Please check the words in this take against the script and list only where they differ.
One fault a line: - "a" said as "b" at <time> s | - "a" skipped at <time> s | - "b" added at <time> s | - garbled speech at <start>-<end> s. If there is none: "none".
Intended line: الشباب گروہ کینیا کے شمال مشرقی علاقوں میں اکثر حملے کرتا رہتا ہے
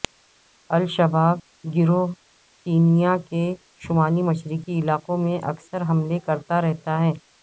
none